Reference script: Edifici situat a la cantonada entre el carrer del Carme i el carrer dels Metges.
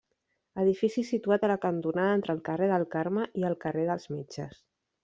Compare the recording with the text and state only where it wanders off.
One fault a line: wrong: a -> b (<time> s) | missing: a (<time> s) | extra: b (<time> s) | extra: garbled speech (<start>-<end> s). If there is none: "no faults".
no faults